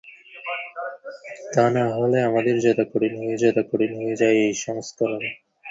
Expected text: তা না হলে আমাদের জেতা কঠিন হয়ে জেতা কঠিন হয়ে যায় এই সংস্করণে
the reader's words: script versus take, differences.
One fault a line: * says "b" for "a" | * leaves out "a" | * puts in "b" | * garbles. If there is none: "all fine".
all fine